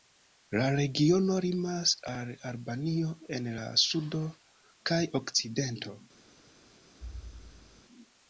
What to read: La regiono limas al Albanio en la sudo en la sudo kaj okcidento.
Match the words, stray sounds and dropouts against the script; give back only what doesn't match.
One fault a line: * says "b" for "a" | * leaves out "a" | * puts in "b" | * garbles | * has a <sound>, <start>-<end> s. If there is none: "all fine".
* leaves out "en la sudo"
* has a thud, 7.0-7.8 s